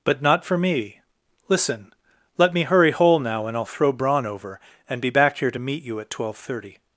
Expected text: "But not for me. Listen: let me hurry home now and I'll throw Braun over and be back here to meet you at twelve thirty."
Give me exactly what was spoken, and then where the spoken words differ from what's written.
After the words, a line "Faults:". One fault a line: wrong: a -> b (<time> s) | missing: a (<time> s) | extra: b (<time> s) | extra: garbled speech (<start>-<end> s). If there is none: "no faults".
"But not for me. Listen: let me hurry hole now and I'll throw Braun over and be back here to meet you at twelve thirty."
Faults:
wrong: home -> hole (2.9 s)